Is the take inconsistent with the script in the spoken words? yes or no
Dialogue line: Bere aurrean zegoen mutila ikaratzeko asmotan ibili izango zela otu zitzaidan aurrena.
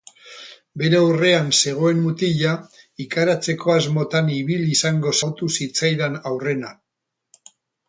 yes